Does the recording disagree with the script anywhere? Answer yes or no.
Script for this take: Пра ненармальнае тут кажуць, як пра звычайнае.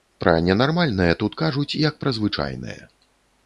no